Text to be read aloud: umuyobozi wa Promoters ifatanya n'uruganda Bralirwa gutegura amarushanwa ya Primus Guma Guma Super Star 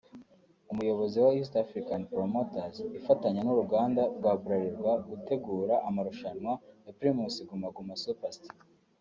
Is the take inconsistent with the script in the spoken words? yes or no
yes